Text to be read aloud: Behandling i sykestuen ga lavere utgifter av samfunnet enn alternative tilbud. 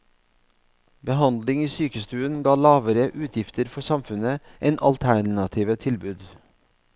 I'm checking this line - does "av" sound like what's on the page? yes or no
no